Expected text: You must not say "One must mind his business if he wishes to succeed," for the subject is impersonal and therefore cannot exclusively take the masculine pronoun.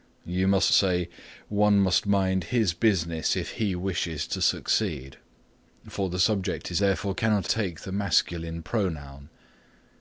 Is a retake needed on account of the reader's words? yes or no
yes